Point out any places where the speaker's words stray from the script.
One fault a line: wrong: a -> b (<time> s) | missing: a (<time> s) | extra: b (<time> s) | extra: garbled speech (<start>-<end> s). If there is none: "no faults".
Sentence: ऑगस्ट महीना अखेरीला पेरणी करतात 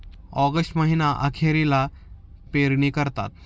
no faults